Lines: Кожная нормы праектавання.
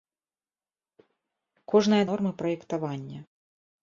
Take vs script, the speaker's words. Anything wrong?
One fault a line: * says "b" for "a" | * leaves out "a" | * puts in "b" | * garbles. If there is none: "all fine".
all fine